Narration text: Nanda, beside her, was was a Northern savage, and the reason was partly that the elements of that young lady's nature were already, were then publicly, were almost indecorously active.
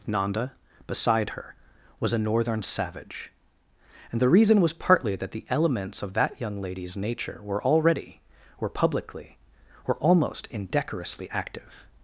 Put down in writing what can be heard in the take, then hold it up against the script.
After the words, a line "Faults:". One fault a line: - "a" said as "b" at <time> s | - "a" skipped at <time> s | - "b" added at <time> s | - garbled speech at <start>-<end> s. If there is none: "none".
Nanda, beside her, was a Northern savage, and the reason was partly that the elements of that young lady's nature were already, were publicly, were almost indecorously active.
Faults:
- "was" skipped at 2.1 s
- "then" skipped at 8.7 s